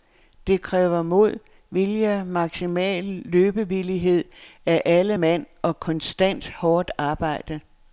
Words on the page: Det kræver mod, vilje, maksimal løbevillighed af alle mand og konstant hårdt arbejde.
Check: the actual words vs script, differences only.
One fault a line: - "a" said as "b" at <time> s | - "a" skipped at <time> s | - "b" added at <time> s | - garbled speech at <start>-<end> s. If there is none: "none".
none